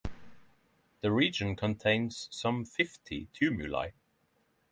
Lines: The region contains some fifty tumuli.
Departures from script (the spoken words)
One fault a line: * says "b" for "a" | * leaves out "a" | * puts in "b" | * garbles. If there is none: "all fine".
all fine